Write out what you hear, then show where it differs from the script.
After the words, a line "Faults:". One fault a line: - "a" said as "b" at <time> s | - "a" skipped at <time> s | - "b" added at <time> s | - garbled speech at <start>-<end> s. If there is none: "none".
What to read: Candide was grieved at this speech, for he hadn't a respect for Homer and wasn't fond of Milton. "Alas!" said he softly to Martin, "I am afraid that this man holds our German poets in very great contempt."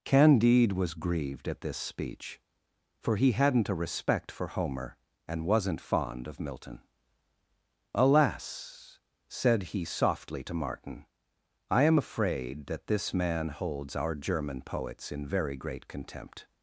Candide was grieved at this speech, for he hadn't a respect for Homer and wasn't fond of Milton. "Alas!" said he softly to Martin, "I am afraid that this man holds our German poets in very great contempt."
Faults:
none